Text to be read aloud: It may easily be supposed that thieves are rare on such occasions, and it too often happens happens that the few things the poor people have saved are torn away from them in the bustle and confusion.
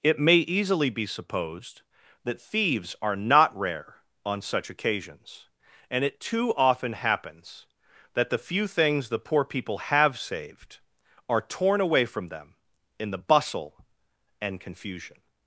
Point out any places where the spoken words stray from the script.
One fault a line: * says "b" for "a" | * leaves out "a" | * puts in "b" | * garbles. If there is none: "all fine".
* puts in "not"
* leaves out "happens"